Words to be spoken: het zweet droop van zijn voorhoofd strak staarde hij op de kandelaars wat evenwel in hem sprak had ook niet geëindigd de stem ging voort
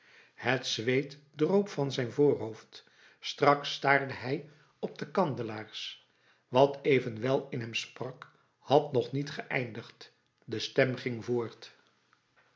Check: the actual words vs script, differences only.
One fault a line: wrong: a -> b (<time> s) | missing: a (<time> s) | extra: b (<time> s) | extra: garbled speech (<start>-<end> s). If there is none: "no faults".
wrong: ook -> nog (8.9 s)